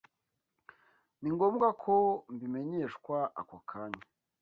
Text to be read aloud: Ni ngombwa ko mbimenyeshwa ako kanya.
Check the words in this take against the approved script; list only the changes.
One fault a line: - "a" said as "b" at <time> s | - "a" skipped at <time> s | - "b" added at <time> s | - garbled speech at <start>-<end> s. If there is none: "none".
none